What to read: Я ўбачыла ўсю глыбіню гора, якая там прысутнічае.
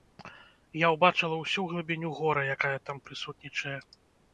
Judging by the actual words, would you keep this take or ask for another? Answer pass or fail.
pass